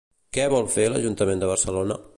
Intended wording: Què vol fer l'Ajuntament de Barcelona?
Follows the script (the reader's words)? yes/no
yes